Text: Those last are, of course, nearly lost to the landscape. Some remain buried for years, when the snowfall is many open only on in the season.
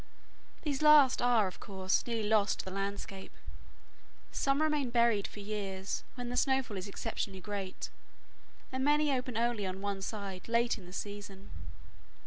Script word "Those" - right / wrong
wrong